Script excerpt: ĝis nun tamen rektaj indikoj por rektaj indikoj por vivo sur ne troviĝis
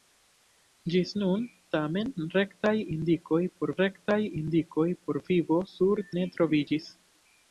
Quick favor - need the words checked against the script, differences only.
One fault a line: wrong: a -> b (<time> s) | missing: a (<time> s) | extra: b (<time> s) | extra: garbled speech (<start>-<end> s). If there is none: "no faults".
no faults